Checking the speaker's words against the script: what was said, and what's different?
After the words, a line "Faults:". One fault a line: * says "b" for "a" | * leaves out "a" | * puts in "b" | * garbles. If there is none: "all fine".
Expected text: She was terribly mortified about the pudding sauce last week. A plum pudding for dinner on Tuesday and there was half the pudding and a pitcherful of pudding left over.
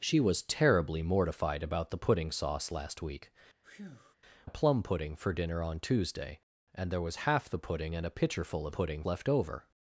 She was terribly mortified about the pudding sauce last week. A plum pudding for dinner on Tuesday and there was half the pudding and a pitcherful of pudding left over.
Faults:
all fine